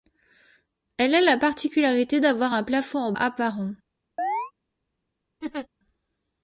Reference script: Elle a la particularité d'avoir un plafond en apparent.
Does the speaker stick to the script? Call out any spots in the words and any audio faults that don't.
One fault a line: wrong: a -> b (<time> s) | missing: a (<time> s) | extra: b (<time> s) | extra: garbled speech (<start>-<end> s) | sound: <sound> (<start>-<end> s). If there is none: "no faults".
sound: chirp (4.2-4.5 s)
sound: laugh (5.4-5.7 s)